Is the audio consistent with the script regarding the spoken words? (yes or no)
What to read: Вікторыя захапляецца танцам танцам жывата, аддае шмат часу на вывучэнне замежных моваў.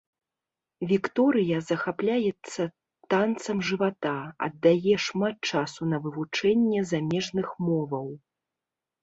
no